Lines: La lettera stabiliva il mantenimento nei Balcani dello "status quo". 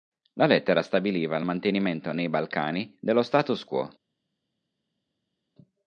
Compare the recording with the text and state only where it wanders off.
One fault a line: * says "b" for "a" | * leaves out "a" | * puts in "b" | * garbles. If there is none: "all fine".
all fine